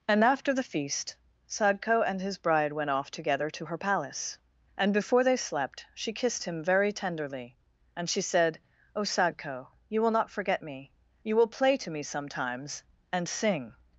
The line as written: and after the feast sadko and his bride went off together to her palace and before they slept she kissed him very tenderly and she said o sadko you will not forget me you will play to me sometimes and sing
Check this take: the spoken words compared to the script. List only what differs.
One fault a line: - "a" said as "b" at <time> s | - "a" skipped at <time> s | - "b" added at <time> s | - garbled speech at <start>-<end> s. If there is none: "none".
none